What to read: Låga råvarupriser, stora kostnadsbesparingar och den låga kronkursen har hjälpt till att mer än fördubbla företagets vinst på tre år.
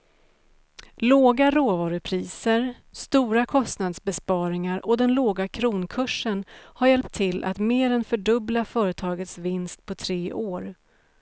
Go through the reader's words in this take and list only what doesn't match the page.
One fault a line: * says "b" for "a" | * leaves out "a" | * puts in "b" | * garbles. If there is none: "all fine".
all fine